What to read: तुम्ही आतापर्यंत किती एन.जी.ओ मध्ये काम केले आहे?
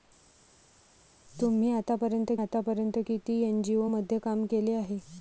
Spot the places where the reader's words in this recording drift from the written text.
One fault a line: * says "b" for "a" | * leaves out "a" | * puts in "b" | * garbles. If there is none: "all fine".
* puts in "आतापर्यंत"